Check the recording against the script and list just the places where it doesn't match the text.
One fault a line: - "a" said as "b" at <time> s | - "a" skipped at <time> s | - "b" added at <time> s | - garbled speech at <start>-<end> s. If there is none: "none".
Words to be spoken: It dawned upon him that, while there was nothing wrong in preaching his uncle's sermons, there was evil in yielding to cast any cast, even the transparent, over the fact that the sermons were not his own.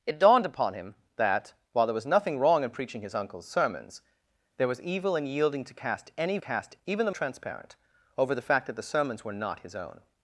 none